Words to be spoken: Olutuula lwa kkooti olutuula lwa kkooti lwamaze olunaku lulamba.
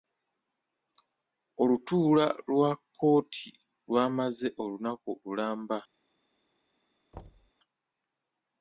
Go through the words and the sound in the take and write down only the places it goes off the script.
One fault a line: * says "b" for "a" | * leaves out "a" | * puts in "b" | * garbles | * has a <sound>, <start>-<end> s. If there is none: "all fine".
* leaves out "olutuula lwa kkooti"
* has a thud, 7.1-7.5 s